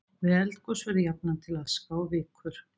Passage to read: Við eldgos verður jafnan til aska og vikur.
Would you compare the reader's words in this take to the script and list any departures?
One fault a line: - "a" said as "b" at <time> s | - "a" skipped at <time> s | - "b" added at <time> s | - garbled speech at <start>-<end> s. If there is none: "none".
none